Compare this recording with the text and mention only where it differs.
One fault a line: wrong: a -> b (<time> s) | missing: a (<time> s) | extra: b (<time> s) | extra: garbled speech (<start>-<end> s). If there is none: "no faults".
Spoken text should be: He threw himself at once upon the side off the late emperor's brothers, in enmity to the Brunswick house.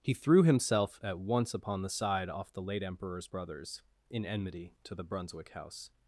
no faults